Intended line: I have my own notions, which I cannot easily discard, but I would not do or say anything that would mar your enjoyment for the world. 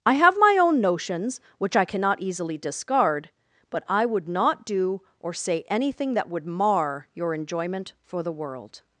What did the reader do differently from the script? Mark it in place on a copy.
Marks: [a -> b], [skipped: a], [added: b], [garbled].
I have my own notions, which I cannot easily discard, but I would not do or say anything that would mar your enjoyment for the world.